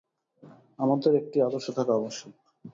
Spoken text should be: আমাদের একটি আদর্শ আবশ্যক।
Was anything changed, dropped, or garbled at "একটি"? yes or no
no